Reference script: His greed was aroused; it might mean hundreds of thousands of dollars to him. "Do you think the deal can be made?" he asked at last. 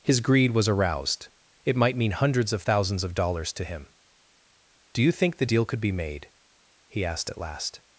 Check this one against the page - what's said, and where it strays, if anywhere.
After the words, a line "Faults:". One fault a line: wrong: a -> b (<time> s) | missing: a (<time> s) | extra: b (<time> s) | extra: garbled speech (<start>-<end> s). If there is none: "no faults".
His greed was aroused; it might mean hundreds of thousands of dollars to him. "Do you think the deal could be made?" he asked at last.
Faults:
wrong: can -> could (5.6 s)